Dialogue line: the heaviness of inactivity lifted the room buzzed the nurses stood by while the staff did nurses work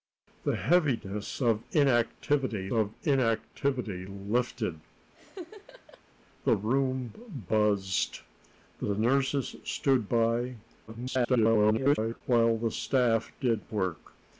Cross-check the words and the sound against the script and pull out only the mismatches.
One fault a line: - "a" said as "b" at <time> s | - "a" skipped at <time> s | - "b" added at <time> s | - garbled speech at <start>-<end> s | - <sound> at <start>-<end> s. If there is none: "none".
- "of inactivity" added at 2.7 s
- laugh at 5.1-6.0 s
- garbled speech at 10.9-12.2 s
- "nurses" skipped at 13.6 s